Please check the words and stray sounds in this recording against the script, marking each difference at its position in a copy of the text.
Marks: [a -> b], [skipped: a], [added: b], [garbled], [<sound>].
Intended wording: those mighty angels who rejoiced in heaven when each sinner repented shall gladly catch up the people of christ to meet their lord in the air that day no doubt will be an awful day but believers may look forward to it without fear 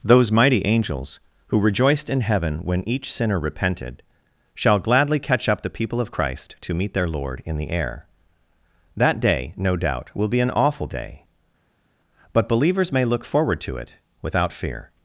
those mighty angels who rejoiced in heaven when each sinner repented shall gladly catch up the people of christ to meet their lord in the air that day no doubt will be an awful day but believers may look forward to it without fear